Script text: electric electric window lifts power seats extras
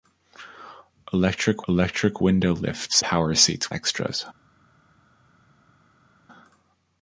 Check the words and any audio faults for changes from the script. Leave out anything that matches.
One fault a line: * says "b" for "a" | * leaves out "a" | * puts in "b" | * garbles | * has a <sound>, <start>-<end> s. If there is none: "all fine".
all fine